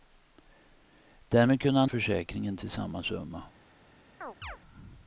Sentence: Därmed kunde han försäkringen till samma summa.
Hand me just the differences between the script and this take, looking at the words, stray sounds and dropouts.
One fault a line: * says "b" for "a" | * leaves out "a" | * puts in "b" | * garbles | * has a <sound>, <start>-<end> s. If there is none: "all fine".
* has a chirp, 4.2-4.6 s